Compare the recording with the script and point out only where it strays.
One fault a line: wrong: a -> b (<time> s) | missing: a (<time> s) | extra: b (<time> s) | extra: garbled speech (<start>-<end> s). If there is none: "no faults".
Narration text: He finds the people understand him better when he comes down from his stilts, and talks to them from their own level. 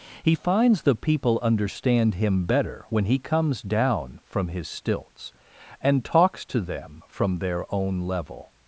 no faults